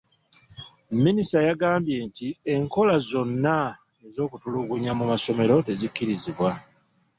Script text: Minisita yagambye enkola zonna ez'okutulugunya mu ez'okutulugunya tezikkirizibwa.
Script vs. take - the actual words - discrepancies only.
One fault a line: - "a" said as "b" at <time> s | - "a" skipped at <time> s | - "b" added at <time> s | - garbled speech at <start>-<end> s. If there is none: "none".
- "nti" added at 2.1 s
- "ez'okutulugunya" said as "masomero" at 5.1 s